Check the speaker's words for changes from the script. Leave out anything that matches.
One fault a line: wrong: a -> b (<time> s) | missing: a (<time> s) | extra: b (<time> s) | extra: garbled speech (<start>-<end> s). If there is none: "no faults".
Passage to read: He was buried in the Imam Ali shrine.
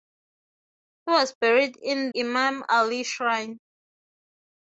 missing: the (2.1 s)